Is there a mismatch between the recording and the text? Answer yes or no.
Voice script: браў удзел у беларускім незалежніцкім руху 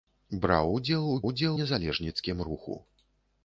yes